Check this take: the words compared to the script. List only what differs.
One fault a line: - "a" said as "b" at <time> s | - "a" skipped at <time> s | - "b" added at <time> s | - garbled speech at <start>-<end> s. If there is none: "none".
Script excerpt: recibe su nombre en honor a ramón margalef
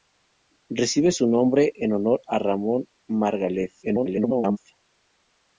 - garbled speech at 3.8-4.6 s